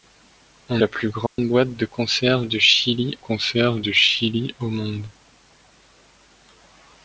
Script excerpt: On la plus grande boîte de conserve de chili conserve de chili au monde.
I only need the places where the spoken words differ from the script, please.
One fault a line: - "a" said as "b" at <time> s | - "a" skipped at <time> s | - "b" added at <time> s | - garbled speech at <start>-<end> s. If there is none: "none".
none